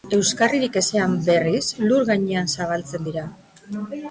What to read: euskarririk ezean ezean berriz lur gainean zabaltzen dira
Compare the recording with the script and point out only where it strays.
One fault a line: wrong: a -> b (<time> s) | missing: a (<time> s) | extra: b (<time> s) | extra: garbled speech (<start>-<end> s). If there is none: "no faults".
missing: ezean (1.1 s)